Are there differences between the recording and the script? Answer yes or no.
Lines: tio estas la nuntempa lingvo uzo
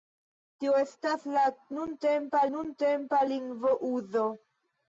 yes